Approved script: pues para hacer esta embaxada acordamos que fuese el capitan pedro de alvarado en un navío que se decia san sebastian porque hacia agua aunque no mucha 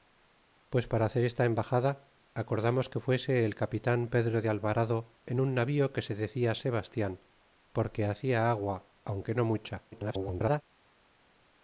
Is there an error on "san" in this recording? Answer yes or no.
yes